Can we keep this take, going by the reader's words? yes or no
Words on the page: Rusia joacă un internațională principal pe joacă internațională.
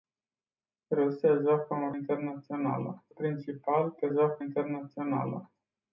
yes